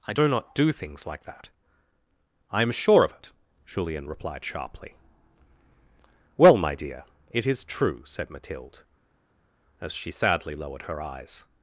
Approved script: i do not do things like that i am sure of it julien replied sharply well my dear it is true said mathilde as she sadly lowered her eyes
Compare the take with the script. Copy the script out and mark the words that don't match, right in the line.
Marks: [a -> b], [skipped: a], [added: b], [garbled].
i do not do things like that i am sure of it julien replied sharply well my dear it is true said mathilde as she sadly lowered her eyes